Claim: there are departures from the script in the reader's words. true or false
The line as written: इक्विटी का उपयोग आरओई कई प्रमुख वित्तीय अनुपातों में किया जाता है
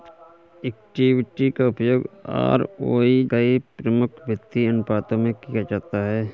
false